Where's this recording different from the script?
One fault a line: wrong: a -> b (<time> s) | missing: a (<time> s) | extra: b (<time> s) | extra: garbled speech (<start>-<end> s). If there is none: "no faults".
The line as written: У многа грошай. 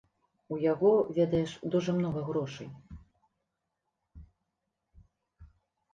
extra: яго ведаеш дужа (0.7 s)